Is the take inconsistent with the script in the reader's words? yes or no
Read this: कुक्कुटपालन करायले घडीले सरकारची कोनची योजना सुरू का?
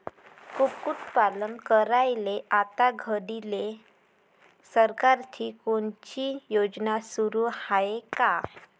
yes